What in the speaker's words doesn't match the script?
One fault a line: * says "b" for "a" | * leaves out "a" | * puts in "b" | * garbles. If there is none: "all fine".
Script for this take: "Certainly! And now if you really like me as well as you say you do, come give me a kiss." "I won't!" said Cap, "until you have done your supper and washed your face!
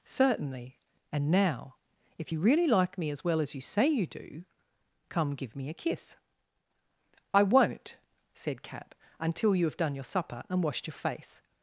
all fine